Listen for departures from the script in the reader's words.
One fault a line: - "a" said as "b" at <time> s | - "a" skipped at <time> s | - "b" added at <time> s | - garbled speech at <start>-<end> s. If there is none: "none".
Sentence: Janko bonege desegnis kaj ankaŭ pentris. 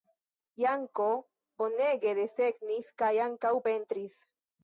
none